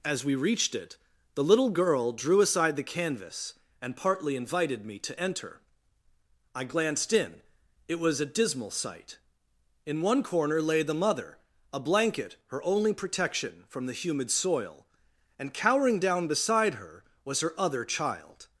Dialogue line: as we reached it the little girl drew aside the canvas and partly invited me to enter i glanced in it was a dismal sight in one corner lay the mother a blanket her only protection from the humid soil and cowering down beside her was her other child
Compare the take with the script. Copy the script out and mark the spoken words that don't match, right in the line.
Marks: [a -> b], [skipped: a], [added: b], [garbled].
as we reached it the little girl drew aside the canvas and partly invited me to enter i glanced in it was a dismal sight in one corner lay the mother a blanket her only protection from the humid soil and cowering down beside her was her other child